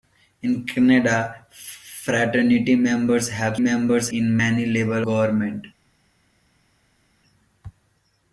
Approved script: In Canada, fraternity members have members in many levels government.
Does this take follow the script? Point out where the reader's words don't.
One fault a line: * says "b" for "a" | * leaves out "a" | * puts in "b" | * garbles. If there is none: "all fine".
all fine